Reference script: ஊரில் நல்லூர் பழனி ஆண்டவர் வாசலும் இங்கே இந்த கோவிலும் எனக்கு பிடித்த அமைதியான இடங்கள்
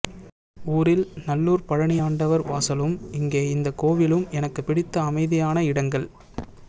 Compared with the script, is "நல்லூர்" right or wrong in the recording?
right